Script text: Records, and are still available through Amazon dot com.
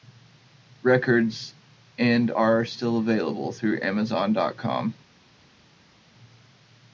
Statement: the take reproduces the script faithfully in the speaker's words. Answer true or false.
true